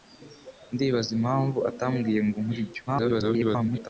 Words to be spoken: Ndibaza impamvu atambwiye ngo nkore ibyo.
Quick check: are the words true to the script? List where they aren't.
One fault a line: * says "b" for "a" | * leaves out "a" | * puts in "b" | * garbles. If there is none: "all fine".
* garbles